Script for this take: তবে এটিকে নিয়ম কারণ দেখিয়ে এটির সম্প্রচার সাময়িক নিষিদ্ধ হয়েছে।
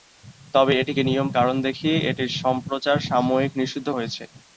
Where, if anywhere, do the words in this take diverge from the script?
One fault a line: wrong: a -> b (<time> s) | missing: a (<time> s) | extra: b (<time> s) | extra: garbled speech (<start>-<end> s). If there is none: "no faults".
no faults